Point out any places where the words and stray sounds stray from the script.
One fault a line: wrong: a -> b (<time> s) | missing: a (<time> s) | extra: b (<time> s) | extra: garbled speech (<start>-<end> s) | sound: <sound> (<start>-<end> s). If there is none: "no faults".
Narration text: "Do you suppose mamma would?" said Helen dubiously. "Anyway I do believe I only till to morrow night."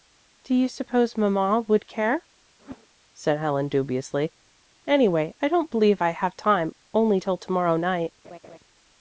extra: care (1.9 s)
sound: whoosh (2.6-2.9 s)
wrong: do -> don't (5.5 s)
extra: have time (6.1 s)
sound: laugh (8.2-8.6 s)